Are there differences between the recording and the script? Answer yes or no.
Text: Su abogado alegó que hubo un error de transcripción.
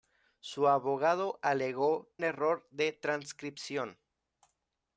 yes